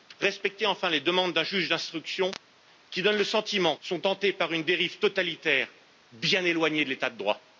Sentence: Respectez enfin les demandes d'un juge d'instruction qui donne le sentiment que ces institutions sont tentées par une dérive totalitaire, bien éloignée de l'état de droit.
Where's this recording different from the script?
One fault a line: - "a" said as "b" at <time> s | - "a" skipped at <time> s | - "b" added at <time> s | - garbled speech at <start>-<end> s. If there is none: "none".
- "que ces institutions" skipped at 3.8 s